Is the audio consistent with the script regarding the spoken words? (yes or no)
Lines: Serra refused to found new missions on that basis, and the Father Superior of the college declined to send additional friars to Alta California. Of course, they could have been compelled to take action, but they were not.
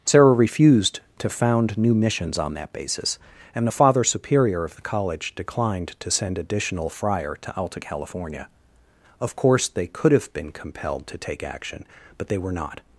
no